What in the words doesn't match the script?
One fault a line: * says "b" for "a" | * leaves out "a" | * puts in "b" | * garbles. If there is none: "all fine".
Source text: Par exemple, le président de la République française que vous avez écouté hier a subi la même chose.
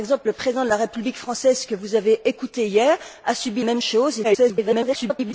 * leaves out "la"
* garbles